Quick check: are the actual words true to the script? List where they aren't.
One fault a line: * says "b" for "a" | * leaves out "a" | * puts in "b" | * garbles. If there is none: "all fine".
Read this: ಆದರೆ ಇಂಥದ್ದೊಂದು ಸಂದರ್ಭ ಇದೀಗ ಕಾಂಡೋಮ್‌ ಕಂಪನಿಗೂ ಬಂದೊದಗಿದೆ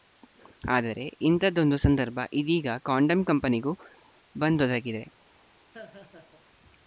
all fine